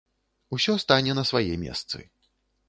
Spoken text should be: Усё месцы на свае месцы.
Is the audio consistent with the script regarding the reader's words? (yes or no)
no